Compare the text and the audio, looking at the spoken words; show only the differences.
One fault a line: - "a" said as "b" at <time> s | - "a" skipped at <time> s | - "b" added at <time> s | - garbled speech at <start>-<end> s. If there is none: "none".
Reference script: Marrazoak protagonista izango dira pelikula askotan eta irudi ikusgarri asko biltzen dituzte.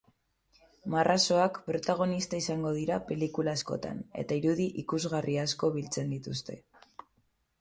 none